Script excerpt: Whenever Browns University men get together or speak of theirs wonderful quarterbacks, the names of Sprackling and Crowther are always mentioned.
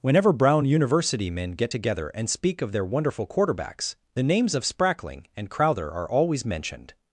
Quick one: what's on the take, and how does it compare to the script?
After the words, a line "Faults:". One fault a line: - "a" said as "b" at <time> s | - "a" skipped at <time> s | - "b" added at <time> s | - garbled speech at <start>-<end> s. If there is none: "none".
Whenever Brown University men get together and speak of their wonderful quarterbacks, the names of Sprackling and Crowther are always mentioned.
Faults:
- "Browns" said as "Brown" at 0.3 s
- "or" said as "and" at 2.1 s
- "theirs" said as "their" at 2.7 s